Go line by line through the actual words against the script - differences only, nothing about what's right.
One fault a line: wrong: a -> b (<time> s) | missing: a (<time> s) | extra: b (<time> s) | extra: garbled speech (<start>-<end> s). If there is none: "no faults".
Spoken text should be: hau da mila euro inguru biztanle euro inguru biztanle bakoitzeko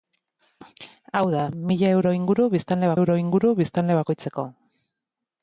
no faults